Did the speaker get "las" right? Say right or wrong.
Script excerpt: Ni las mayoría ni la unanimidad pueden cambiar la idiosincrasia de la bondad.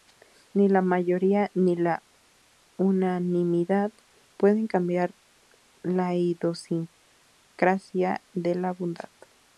wrong